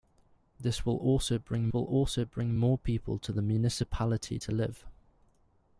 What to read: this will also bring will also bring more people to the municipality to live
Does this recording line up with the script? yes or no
yes